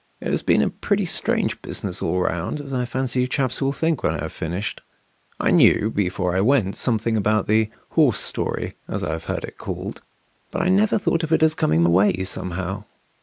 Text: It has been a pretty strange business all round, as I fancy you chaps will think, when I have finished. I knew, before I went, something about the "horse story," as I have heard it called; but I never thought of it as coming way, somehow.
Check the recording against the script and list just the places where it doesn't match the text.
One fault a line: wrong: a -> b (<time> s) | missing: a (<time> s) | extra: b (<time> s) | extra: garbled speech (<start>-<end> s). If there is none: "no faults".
no faults